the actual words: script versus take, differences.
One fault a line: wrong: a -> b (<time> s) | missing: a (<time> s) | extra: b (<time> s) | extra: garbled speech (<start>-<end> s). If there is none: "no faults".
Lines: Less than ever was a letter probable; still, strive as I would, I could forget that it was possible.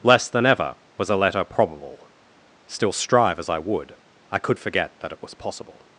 no faults